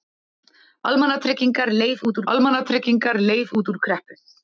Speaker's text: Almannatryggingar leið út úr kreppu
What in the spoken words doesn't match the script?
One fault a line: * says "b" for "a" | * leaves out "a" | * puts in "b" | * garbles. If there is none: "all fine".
* puts in "almannatryggingar leið út"